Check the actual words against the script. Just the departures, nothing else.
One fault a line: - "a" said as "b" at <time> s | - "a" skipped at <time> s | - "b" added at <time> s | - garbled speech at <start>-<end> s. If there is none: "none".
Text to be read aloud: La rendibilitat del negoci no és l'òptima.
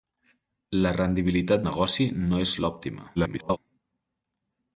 - "del" skipped at 1.7 s
- garbled speech at 3.2-3.6 s